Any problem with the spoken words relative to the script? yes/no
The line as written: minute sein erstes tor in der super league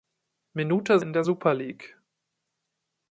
yes